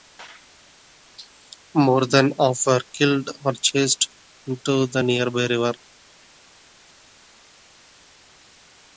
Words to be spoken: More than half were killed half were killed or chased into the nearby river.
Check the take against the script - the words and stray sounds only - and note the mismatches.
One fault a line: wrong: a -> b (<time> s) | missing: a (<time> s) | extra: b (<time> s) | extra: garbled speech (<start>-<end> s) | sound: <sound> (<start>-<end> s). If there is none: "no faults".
missing: half were killed (3.3 s)